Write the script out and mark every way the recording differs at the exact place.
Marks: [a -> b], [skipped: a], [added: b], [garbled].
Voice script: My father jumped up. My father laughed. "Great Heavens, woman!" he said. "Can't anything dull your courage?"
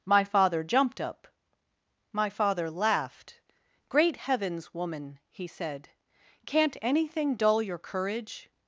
My father jumped up. My father laughed. "Great Heavens, woman!" he said. "Can't anything dull your courage?"